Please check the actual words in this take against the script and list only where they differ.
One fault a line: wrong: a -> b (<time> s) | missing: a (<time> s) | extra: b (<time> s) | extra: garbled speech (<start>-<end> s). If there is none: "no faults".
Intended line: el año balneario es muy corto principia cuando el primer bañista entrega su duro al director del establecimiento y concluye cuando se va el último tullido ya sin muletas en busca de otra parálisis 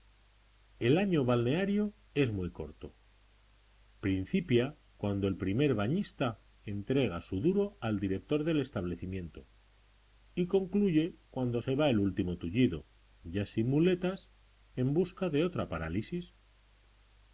no faults